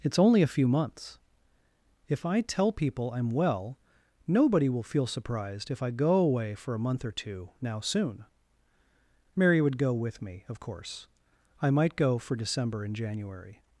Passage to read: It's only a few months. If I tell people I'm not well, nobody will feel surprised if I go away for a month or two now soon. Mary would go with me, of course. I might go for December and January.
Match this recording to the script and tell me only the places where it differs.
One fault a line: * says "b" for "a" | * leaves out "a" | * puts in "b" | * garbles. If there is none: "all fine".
* leaves out "not"